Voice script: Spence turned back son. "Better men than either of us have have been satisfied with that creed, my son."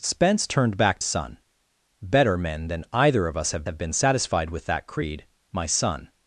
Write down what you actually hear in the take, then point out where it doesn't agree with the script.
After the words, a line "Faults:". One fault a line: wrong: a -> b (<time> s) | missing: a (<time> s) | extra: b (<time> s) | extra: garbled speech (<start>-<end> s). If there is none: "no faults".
Spence turned back son. "Better men than either of us have have been satisfied with that creed, my son."
Faults:
no faults